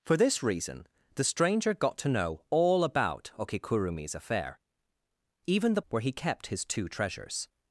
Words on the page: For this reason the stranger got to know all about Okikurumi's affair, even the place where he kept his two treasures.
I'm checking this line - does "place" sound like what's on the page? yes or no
no